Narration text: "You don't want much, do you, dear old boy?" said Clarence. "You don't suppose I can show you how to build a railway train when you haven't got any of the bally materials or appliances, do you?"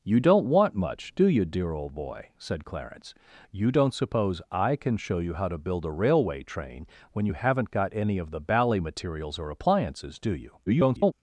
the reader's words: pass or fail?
fail